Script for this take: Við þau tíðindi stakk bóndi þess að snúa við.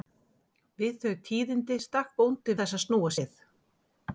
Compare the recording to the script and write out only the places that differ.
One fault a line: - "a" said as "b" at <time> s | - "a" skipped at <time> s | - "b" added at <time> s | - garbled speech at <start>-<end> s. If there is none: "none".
none